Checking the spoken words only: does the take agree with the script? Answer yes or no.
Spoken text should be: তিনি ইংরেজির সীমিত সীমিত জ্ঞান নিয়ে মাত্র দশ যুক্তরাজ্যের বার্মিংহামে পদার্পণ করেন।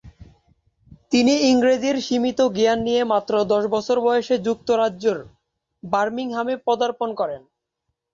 no